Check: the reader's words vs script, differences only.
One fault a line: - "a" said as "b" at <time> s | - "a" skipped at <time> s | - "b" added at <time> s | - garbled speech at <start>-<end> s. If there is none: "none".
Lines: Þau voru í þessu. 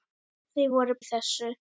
none